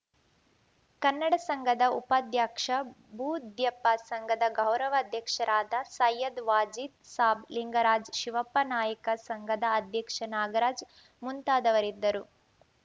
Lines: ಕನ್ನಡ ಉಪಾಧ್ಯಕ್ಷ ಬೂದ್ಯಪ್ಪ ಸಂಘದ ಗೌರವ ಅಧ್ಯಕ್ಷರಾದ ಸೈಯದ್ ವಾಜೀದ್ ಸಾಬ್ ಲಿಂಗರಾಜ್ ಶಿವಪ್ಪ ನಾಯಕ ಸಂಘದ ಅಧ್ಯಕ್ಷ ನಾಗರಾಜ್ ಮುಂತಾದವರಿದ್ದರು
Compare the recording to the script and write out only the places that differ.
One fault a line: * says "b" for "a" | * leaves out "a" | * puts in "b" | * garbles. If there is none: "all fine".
* puts in "ಸಂಘದ"